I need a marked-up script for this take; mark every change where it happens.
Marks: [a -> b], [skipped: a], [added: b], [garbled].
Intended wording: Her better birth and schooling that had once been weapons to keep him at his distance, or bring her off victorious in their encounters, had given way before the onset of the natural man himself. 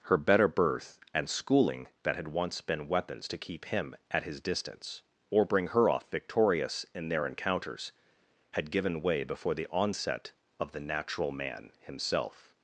Her better birth and schooling that had once been weapons to keep him at his distance, or bring her off victorious in their encounters, had given way before the onset of the natural man himself.